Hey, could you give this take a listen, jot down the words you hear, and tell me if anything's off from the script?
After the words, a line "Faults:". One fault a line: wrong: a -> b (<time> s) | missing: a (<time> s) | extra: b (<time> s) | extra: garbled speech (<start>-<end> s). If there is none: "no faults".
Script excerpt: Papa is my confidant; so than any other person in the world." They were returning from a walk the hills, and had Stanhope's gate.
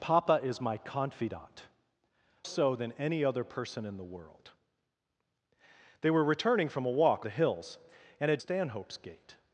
Papa is my confidant; so than any other person in the world." They were returning from a walk the hills, and had Stanhope's gate.
Faults:
no faults